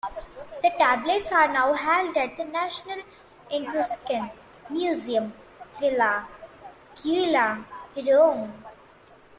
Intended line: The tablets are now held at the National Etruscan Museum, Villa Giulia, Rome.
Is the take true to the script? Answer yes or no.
yes